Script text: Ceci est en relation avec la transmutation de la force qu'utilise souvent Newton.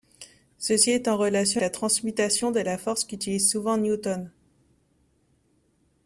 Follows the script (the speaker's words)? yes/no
no